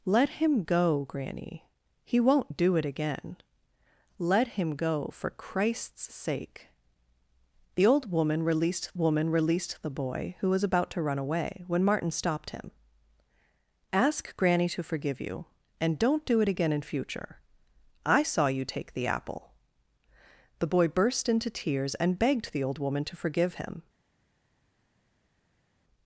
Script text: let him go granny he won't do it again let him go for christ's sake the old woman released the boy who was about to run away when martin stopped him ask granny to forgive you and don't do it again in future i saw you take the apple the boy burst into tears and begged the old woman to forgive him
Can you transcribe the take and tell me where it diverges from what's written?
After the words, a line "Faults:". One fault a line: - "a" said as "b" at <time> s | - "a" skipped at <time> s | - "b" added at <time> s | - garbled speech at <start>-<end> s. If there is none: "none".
let him go granny he won't do it again let him go for christ's sake the old woman released woman released the boy who was about to run away when martin stopped him ask granny to forgive you and don't do it again in future i saw you take the apple the boy burst into tears and begged the old woman to forgive him
Faults:
- "woman released" added at 9.0 s